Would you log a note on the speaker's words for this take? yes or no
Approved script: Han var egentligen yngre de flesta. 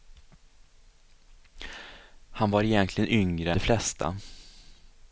no